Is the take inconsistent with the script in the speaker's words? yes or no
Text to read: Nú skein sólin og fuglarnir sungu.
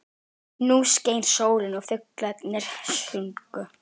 no